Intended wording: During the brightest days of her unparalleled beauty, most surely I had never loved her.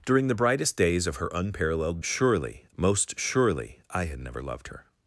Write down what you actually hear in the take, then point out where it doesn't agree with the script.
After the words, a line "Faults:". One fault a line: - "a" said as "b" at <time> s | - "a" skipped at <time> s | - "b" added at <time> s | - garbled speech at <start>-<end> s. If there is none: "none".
During the brightest days of her unparalleled surely, most surely I had never loved her.
Faults:
- "beauty" said as "surely" at 2.0 s